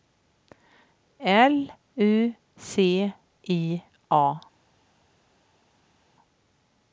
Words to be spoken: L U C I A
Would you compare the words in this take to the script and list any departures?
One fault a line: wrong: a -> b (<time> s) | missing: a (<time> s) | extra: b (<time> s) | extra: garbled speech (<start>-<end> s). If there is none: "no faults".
no faults